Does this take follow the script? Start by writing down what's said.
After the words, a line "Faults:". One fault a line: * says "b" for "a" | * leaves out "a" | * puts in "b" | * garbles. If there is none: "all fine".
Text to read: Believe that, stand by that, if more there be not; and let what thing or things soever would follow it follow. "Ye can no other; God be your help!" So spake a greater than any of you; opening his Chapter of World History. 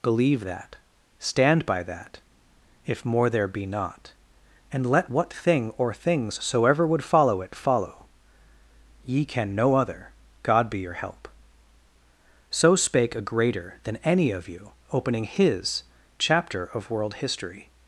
Believe that, stand by that, if more there be not; and let what thing or things soever would follow it follow. "Ye can no other; God be your help!" So spake a greater than any of you; opening his Chapter of World History.
Faults:
all fine